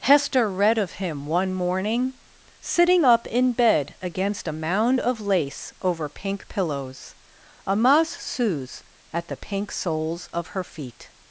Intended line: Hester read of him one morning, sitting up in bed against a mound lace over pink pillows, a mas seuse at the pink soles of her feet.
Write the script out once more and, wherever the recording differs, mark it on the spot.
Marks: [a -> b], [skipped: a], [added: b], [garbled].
Hester read of him one morning, sitting up in bed against a mound [added: of] lace over pink pillows, a mas seuse at the pink soles of her feet.